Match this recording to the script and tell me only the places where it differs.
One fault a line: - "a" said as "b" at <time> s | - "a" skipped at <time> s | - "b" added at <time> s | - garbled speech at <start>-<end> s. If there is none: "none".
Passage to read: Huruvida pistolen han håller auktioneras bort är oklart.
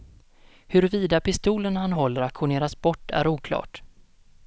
none